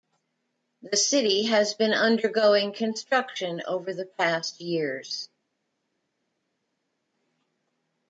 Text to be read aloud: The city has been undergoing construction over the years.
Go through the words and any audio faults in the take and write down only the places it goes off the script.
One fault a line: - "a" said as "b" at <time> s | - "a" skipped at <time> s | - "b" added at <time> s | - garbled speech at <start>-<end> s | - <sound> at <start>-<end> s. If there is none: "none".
- "past" added at 4.1 s